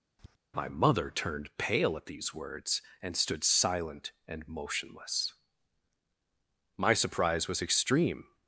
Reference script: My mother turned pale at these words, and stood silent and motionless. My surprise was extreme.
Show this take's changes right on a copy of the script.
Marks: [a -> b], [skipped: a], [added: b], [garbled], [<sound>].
[tap] My mother turned pale at these words, and stood silent and motionless. My surprise was extreme.